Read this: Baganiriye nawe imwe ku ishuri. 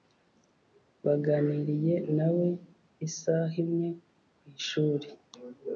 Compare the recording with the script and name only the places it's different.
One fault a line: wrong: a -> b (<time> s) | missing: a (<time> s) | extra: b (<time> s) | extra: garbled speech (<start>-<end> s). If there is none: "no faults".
extra: isaha (3.1 s)